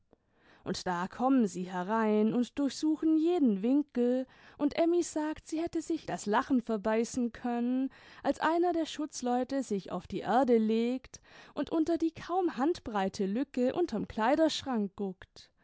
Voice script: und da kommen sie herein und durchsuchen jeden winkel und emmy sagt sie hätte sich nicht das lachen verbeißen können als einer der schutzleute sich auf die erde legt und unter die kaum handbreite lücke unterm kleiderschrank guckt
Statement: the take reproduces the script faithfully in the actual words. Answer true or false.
false